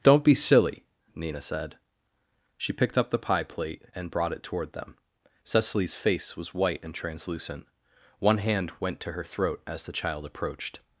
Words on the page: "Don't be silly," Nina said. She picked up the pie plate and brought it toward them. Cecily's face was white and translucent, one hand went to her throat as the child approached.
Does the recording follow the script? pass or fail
pass